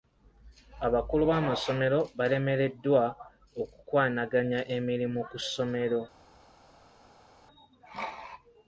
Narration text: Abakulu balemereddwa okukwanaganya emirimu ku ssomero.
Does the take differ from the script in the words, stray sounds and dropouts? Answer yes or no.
yes